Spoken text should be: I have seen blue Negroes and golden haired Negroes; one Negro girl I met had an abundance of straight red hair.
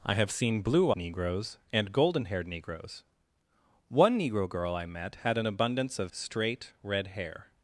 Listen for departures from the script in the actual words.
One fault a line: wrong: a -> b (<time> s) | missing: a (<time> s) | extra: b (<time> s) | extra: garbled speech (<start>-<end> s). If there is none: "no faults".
no faults